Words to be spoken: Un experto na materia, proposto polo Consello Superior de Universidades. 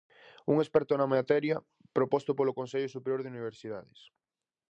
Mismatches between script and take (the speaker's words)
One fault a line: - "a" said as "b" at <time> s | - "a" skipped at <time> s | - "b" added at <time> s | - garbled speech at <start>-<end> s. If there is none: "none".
none